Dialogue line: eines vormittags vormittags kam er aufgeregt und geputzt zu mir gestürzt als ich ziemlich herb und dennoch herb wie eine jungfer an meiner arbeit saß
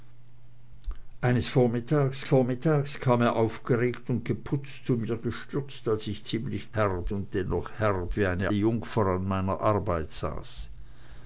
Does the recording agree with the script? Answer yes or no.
yes